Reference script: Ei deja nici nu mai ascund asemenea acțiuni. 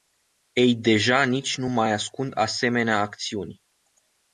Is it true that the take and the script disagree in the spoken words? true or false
false